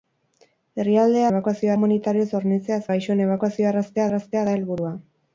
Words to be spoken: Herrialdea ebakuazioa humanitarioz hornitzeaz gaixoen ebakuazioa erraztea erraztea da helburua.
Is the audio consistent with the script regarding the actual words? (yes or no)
yes